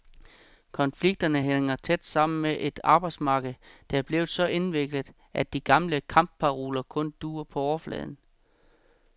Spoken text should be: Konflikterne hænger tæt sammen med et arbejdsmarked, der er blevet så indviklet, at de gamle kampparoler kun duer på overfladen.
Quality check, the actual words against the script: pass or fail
pass